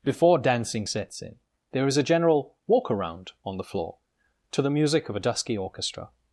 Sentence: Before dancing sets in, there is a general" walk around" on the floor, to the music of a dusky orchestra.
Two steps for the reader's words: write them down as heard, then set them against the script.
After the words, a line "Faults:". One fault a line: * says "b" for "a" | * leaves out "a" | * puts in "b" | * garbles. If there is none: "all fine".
Before dancing sets in, there is a general" walk around" on the floor, to the music of a dusky orchestra.
Faults:
all fine